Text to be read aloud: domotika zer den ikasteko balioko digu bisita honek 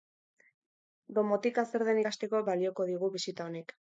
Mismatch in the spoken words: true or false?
false